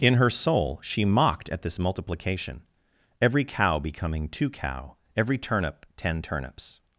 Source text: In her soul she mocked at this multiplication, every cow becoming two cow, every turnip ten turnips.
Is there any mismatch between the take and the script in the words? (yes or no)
no